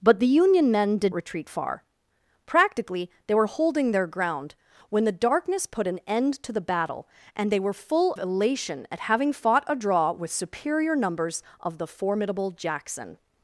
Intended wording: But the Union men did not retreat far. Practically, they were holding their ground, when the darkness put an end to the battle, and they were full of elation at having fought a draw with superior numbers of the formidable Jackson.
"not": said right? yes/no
no